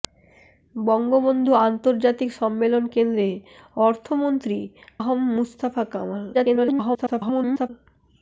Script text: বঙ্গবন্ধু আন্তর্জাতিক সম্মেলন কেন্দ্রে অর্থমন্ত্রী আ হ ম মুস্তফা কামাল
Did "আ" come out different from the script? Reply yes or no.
yes